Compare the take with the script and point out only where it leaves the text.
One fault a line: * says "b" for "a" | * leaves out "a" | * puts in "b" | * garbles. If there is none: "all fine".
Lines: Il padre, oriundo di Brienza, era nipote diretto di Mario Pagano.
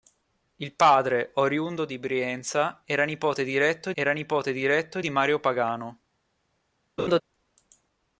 * puts in "era nipote diretto"